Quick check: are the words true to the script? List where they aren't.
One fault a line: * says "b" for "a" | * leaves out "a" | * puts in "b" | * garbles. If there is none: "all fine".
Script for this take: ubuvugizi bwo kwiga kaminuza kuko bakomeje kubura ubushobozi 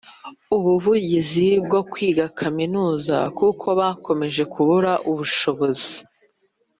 all fine